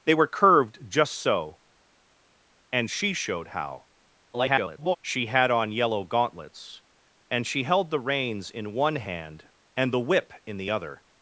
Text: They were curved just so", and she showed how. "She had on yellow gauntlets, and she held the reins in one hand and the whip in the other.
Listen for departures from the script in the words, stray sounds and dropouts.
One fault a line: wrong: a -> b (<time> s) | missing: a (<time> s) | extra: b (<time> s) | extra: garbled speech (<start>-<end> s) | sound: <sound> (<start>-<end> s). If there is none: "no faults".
extra: garbled speech (4.3-5.0 s)